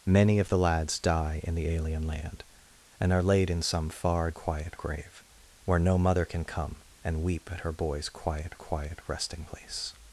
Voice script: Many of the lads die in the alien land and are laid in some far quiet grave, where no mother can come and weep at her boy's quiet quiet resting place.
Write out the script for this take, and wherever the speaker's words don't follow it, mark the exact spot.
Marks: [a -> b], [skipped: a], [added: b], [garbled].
Many of the lads die in the alien land and are laid in some far quiet grave, where no mother can come and weep at her boy's quiet quiet resting place.